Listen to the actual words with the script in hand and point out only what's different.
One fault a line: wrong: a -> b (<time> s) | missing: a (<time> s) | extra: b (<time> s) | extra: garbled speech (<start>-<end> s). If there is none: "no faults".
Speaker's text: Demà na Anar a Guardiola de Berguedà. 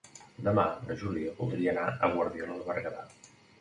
extra: Júlia voldria (1.0 s)